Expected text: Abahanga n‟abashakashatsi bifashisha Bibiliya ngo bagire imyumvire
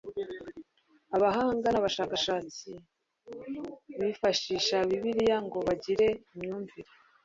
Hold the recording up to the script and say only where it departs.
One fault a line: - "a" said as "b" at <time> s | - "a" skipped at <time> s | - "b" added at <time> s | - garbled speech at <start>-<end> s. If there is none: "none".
none